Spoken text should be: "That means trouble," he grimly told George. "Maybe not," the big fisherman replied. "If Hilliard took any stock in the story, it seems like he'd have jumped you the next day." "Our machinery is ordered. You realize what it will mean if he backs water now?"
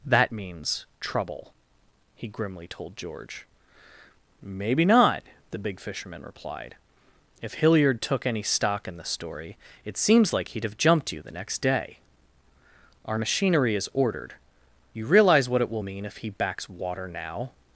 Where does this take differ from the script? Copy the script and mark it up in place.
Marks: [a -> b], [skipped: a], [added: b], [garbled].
"That means trouble," he grimly told George. "Maybe not," the big fisherman replied. "If Hilliard took any stock in the story, it seems like he'd have jumped you the next day." "Our machinery is ordered. You realize what it will mean if he backs water now?"